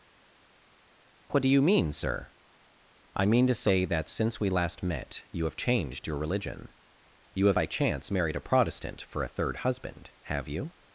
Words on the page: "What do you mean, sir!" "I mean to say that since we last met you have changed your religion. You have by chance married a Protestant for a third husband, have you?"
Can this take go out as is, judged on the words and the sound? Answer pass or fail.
pass